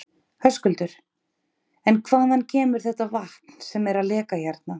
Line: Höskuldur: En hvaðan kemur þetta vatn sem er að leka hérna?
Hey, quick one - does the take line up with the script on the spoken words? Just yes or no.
yes